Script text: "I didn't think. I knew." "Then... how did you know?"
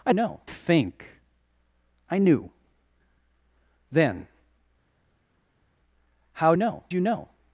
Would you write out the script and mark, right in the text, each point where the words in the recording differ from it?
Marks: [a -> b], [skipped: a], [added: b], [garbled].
"I [didn't -> know] think. I knew." "Then... how [did -> know] you know?"